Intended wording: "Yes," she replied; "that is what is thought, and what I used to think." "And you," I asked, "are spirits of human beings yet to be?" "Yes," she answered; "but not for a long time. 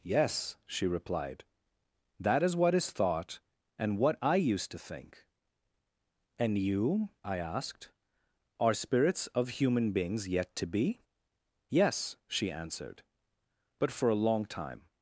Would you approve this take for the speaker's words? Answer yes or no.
no